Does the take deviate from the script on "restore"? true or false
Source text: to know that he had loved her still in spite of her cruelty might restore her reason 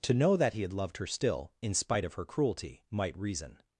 true